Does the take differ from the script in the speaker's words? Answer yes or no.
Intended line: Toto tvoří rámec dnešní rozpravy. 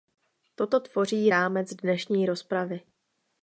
no